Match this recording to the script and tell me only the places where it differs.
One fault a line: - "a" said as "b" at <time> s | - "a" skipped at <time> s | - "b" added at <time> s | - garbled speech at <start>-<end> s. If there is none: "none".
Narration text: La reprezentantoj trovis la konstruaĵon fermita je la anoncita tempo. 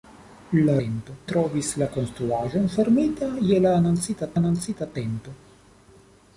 - "reprezentantoj" said as "tempo" at 0.8 s
- "anoncita" added at 4.4 s